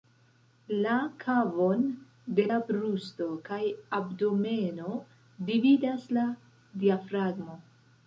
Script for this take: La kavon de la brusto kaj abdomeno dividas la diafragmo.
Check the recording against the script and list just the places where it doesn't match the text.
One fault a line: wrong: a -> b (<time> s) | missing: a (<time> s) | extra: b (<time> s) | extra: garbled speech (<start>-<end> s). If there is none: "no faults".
no faults